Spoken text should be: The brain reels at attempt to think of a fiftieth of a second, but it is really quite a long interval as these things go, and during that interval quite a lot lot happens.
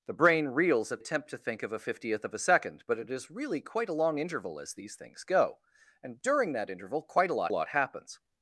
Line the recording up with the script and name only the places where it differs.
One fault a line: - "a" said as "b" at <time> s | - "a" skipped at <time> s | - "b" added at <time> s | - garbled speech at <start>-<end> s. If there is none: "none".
none